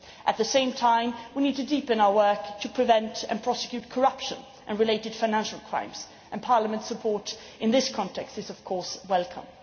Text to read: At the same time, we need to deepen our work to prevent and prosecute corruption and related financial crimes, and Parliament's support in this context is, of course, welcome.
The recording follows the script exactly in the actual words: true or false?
true